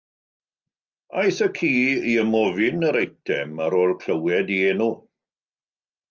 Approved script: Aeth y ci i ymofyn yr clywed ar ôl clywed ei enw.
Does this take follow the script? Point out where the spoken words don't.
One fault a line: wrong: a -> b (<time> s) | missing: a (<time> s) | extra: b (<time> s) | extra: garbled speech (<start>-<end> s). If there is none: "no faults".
wrong: clywed -> eitem (3.0 s)